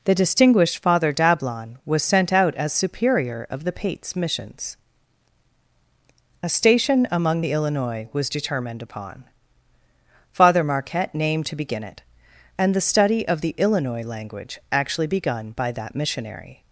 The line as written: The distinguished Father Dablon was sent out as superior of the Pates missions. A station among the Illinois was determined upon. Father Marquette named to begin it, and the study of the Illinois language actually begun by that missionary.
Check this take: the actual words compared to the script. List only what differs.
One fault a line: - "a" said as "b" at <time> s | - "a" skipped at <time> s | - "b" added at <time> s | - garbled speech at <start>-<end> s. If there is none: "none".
none